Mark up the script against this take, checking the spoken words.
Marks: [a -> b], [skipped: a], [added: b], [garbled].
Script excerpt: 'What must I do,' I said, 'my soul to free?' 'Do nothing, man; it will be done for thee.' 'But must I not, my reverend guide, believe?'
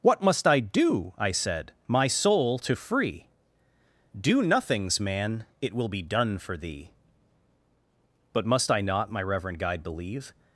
'What must I do,' I said, 'my soul to free?' 'Do [nothing, -> nothings] man; it will be done for thee.' 'But must I not, my reverend guide, believe?'